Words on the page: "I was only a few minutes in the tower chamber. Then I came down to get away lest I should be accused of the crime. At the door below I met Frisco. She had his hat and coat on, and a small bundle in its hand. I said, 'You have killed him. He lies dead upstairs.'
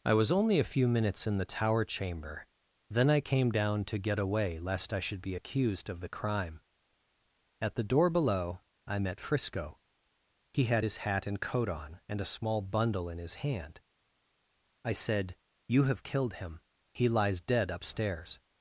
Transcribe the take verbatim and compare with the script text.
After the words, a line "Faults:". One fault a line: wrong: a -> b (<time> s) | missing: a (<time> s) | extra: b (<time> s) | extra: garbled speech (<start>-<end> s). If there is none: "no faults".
"I was only a few minutes in the tower chamber. Then I came down to get away lest I should be accused of the crime. At the door below I met Frisco. He had his hat and coat on, and a small bundle in his hand. I said, 'You have killed him. He lies dead upstairs.'
Faults:
wrong: She -> He (10.5 s)
wrong: its -> his (13.2 s)